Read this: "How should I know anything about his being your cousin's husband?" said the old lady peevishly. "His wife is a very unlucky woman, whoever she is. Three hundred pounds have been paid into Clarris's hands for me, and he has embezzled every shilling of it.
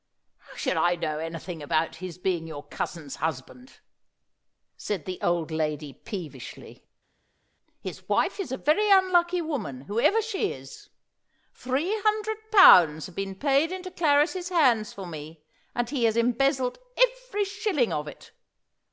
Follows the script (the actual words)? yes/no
yes